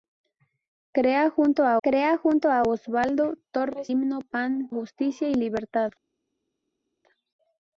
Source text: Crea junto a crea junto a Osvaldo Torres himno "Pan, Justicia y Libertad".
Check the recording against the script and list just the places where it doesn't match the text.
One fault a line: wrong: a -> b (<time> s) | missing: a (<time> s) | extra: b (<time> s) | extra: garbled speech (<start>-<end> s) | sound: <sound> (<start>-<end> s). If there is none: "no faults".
no faults